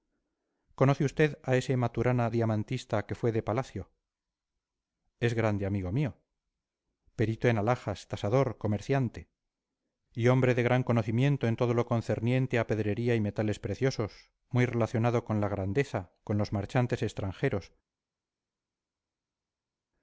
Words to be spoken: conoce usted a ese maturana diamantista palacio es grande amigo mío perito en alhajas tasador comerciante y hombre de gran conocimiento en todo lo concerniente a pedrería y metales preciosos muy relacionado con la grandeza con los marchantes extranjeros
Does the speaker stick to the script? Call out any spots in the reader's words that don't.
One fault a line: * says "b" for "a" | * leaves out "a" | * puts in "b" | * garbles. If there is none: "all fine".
* puts in "que fue de"